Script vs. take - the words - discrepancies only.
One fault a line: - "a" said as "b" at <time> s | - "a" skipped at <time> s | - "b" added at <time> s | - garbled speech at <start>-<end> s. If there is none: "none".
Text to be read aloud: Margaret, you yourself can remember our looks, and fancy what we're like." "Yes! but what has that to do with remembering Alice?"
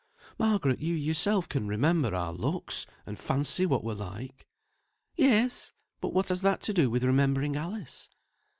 none